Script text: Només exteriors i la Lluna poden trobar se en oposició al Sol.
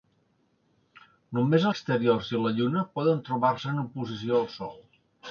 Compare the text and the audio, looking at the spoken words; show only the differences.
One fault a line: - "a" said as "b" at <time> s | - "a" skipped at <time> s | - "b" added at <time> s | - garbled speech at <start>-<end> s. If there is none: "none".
none